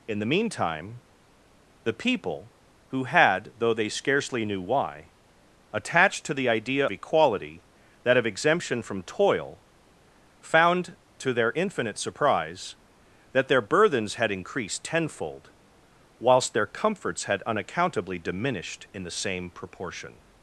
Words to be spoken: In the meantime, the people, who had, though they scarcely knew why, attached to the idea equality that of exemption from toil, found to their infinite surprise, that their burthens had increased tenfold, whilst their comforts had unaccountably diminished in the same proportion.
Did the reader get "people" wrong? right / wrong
right